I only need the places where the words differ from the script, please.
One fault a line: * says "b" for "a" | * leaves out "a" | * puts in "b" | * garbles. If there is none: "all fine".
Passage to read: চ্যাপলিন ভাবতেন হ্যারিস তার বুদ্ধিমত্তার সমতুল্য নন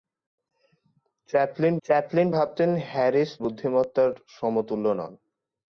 * puts in "চ্যাপলিন"
* leaves out "তার"